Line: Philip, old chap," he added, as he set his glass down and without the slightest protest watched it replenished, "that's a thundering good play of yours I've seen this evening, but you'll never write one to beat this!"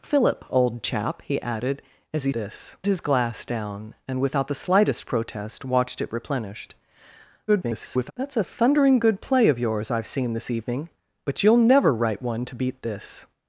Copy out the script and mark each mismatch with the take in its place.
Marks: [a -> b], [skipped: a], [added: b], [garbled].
Philip, old chap," he added, as he [set -> this] his glass down and without the slightest protest watched it replenished, [garbled] "that's a thundering good play of yours I've seen this evening, but you'll never write one to beat this!"